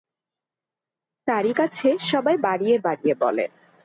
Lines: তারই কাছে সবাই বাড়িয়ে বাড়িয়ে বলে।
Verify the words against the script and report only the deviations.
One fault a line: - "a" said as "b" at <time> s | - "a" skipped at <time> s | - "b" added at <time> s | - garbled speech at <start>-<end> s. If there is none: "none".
none